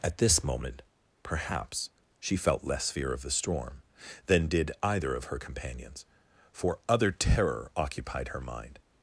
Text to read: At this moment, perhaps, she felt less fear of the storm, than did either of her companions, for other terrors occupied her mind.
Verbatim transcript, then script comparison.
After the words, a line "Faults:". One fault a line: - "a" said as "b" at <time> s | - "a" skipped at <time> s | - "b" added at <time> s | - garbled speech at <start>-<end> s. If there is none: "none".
At this moment, perhaps, she felt less fear of the storm, than did either of her companions, for other terror occupied her mind.
Faults:
- "terrors" said as "terror" at 7.1 s